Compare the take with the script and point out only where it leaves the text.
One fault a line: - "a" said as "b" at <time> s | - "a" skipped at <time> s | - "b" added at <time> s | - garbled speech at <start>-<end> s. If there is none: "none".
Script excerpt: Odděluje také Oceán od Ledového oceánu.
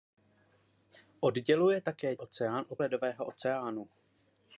none